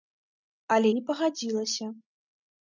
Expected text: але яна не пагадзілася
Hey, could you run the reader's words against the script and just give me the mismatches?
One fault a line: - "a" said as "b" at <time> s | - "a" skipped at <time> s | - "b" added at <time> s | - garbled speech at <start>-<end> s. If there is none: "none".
- "яна" skipped at 0.9 s